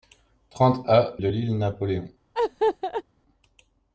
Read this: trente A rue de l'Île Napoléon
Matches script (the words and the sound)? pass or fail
fail